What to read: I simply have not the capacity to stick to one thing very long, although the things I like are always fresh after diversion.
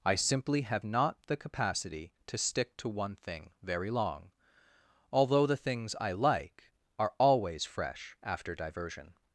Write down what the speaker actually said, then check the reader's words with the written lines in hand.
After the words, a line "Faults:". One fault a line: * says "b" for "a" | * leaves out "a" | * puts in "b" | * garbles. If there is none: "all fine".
I simply have not the capacity to stick to one thing very long, although the things I like are always fresh after diversion.
Faults:
all fine